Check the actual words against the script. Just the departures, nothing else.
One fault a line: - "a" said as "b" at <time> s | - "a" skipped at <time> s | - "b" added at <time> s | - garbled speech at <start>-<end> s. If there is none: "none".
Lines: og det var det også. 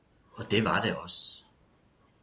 none